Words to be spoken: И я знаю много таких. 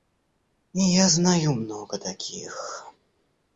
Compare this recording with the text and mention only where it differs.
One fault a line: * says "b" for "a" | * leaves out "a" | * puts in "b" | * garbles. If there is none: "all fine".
all fine